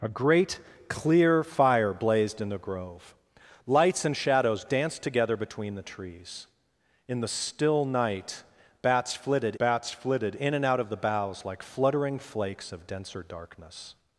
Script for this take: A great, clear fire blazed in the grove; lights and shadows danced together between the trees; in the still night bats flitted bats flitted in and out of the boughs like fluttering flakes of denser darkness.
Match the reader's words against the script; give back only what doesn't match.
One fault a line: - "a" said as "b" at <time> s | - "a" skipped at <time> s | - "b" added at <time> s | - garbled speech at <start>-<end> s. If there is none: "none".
none